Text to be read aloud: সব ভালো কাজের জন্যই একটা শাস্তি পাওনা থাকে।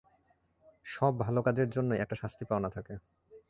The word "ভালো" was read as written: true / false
true